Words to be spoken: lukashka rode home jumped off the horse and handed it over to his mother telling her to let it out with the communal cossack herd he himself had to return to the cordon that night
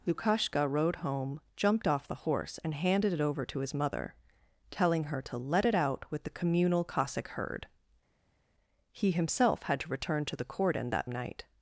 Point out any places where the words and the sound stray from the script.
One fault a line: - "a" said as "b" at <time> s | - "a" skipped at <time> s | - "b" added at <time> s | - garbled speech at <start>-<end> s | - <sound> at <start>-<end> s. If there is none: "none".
none